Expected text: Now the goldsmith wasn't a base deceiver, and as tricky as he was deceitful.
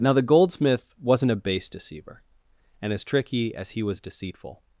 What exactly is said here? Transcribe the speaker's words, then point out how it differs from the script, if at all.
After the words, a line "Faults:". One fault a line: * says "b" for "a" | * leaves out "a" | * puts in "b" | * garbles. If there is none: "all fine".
Now the goldsmith wasn't a base deceiver, and as tricky as he was deceitful.
Faults:
all fine